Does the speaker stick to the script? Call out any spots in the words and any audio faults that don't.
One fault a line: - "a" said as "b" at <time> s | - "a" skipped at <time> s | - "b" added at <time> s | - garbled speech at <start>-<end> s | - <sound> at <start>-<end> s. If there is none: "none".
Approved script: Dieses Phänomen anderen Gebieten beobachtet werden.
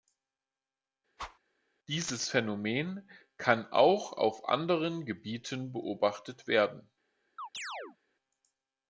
- whoosh at 1.2-1.4 s
- "kann auch auf" added at 3.4 s
- chirp at 7.4-8.0 s